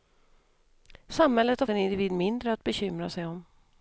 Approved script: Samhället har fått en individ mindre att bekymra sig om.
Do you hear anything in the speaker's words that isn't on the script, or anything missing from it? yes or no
yes